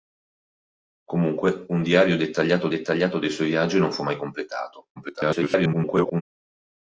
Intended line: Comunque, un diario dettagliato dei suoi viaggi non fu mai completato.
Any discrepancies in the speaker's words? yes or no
yes